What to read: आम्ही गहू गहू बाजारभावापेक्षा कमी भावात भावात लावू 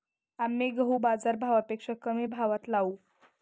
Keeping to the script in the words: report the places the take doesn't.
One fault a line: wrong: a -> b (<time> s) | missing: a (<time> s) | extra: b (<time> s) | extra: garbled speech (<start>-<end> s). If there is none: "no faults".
missing: गहू (1.0 s)
missing: भावात (2.7 s)